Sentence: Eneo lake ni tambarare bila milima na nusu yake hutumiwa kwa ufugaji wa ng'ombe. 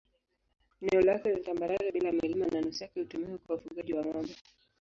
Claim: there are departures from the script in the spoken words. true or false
false